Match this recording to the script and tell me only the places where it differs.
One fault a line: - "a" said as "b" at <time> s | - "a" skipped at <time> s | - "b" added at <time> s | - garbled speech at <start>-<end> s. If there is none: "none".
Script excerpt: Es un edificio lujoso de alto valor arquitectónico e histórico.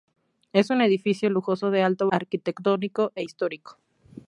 - "valor" skipped at 2.1 s